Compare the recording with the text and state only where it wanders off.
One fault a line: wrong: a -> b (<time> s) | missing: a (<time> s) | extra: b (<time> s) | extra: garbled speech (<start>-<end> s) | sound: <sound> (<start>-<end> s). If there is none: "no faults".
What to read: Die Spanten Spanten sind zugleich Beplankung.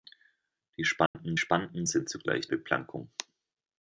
sound: dropout (1.1-1.1 s)